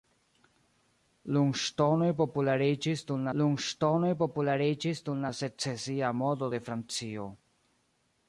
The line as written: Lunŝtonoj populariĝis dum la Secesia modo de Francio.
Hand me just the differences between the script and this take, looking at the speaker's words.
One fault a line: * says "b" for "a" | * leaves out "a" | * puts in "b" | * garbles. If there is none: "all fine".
* puts in "lunŝtonoj populariĝis dum"